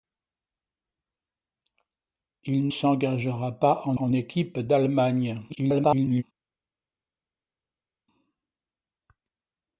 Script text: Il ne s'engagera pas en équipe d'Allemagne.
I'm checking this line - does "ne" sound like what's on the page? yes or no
no